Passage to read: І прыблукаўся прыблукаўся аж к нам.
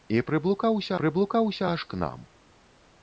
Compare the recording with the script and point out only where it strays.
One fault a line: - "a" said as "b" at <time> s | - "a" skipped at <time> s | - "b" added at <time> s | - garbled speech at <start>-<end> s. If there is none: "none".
none